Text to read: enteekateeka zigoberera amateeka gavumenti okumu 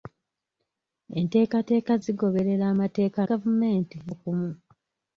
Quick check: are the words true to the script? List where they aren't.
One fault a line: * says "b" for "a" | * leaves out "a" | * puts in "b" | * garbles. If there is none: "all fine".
all fine